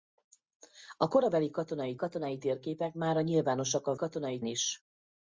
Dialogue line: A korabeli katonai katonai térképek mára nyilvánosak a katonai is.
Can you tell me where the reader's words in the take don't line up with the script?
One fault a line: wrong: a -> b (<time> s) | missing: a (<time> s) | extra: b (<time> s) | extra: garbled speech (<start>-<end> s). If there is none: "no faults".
no faults